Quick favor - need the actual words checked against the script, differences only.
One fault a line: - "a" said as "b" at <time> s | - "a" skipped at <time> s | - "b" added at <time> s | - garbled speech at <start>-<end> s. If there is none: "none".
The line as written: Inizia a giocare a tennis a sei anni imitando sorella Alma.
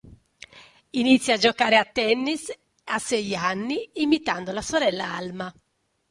- "la" added at 4.5 s